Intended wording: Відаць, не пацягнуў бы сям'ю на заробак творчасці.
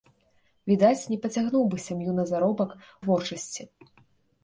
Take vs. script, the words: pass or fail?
pass